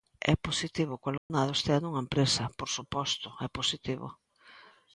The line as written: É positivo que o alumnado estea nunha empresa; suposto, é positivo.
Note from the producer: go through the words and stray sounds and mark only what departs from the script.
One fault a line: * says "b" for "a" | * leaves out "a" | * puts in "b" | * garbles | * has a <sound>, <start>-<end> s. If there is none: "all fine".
* has a dropout, 1.2-1.3 s
* puts in "por"